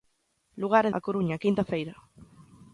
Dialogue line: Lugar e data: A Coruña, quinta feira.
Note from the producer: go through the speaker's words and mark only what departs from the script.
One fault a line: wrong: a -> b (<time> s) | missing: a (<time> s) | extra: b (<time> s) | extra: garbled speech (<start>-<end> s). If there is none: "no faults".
missing: data (0.9 s)